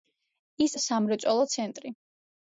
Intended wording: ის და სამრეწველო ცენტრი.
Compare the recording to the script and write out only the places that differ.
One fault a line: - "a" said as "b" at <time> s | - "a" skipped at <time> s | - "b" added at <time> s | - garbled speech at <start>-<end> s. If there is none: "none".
none